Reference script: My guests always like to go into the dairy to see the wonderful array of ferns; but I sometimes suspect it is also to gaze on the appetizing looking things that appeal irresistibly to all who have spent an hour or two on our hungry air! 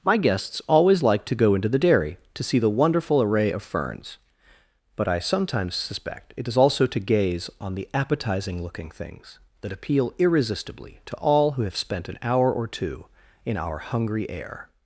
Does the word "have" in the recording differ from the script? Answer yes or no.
no